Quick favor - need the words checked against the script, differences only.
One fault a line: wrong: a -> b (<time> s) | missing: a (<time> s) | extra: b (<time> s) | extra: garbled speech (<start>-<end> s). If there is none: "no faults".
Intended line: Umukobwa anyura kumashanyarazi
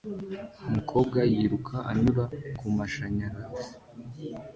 extra: yiruka (1.3 s)